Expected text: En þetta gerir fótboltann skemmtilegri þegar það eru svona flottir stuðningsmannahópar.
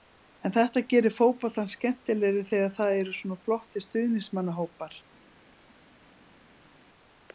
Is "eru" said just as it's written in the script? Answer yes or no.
yes